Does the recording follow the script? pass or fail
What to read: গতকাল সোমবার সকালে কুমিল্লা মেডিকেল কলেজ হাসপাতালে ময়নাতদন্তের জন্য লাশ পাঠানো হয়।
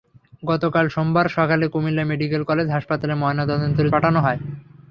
fail